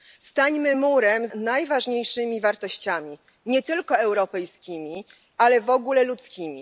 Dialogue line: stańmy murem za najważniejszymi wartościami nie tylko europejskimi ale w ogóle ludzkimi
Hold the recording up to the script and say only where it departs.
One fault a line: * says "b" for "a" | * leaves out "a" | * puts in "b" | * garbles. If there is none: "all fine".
* leaves out "za"